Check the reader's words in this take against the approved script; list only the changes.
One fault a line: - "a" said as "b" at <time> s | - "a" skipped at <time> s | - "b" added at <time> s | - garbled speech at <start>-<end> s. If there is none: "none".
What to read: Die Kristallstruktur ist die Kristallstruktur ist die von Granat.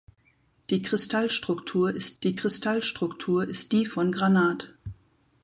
none